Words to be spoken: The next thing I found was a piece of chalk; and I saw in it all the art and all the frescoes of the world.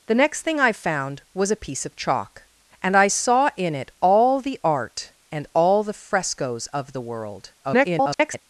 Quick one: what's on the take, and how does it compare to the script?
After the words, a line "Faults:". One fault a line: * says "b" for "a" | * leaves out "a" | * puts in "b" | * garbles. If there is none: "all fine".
The next thing I found was a piece of chalk; and I saw in it all the art and all the frescoes of the world. [garbled]
Faults:
* garbles